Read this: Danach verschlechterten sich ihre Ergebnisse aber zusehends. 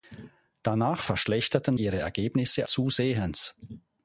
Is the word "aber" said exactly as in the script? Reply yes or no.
no